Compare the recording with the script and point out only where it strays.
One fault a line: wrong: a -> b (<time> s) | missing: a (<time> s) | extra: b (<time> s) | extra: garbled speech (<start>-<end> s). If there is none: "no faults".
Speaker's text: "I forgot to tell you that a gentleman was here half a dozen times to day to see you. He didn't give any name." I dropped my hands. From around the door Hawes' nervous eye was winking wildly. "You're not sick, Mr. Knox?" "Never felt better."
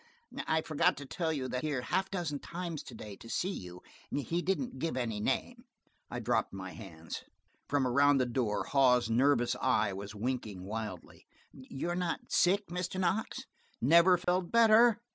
missing: a gentleman was (1.6 s)